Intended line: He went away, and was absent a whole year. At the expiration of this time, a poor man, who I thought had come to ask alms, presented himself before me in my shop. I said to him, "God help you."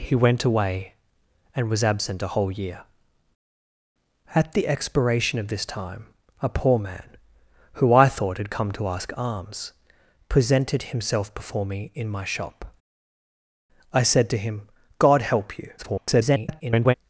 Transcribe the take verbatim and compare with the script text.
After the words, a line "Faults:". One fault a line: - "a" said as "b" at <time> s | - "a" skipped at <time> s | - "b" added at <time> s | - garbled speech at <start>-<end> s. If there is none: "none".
He went away, and was absent a whole year. At the expiration of this time, a poor man, who I thought had come to ask alms, presented himself before me in my shop. I said to him, "God help you." [garbled]
Faults:
- garbled speech at 15.8-16.9 s